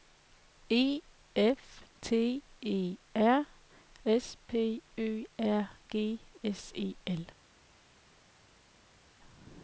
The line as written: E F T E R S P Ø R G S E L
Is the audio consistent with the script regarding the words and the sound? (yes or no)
yes